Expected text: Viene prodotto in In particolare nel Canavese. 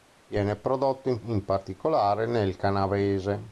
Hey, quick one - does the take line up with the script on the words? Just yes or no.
yes